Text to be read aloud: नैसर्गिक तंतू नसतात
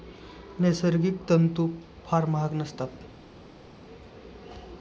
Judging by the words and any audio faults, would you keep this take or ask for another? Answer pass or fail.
fail